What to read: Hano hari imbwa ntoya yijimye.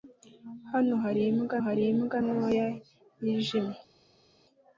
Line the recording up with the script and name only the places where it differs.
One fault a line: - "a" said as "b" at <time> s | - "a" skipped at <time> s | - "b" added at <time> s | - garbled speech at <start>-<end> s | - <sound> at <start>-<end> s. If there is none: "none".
- "hari imbwa" added at 1.6 s